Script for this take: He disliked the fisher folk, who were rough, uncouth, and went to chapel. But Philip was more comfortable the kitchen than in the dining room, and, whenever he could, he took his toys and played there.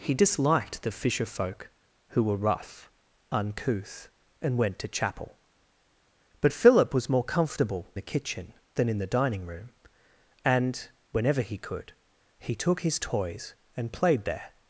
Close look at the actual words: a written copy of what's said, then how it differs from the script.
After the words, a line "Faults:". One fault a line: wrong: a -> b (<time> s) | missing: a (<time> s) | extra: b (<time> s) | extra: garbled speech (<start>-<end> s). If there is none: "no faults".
He disliked the fisher folk, who were rough, uncouth, and went to chapel. But Philip was more comfortable the kitchen than in the dining room, and, whenever he could, he took his toys and played there.
Faults:
no faults